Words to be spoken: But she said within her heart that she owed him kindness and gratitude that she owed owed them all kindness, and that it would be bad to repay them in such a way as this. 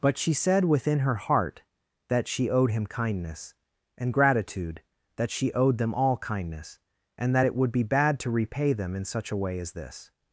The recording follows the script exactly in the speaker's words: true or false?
false